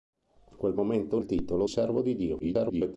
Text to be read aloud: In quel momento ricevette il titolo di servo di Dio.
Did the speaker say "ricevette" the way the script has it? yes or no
no